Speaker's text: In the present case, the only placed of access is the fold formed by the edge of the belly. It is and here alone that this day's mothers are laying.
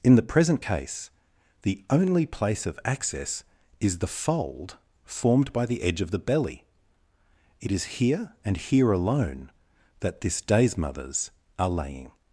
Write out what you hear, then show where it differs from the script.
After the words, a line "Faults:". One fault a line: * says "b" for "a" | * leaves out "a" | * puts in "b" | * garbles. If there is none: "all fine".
In the present case, the only place of access is the fold formed by the edge of the belly. It is here and here alone that this day's mothers are laying.
Faults:
* says "place" for "placed"
* puts in "here"